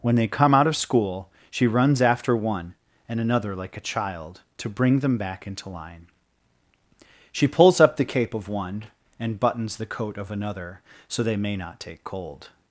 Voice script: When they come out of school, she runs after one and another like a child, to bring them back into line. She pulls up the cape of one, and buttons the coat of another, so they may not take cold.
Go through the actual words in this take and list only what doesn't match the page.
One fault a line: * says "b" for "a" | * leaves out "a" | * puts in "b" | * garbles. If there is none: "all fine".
all fine